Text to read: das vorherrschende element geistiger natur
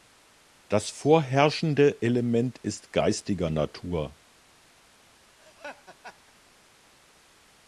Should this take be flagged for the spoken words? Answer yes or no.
yes